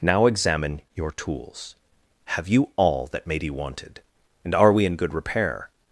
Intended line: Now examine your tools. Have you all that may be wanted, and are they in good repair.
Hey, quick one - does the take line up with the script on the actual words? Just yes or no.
no